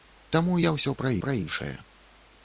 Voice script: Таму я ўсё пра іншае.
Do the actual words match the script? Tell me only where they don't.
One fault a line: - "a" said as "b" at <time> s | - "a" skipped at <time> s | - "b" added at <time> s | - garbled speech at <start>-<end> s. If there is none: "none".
- "пра" added at 1.3 s